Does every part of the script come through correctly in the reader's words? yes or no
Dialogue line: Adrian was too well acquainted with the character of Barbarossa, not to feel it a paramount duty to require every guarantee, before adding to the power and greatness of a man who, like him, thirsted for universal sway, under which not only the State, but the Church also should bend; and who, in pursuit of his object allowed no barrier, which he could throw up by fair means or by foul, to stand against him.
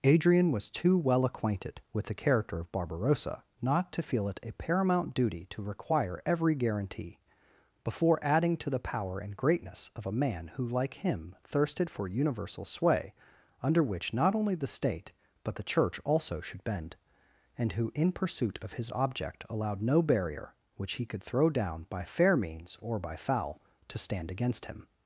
no